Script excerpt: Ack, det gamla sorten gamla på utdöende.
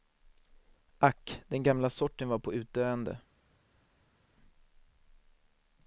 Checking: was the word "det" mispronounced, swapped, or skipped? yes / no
yes